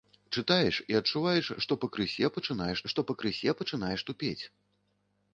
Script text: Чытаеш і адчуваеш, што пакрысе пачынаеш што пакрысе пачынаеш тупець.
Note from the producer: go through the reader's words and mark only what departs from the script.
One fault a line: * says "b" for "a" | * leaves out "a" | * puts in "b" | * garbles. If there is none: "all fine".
all fine